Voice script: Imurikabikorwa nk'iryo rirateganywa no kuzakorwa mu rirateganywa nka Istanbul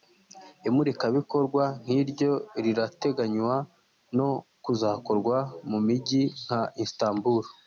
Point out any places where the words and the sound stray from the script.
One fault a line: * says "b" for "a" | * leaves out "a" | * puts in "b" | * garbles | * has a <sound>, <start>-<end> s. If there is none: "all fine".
* says "mijyi" for "rirateganywa"